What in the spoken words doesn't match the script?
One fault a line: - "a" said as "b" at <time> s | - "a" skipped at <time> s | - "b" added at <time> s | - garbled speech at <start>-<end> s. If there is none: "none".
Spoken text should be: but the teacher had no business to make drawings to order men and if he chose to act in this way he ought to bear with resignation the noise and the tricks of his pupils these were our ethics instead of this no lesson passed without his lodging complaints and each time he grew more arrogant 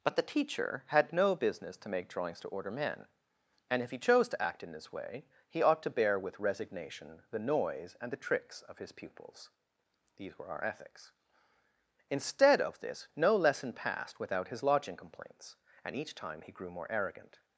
none